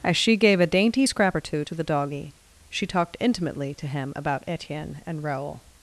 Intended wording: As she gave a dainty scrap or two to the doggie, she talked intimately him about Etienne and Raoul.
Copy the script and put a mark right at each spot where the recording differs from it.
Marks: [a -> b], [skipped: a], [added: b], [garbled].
As she gave a dainty scrap or two to the doggie, she talked intimately [added: to] him about Etienne and Raoul.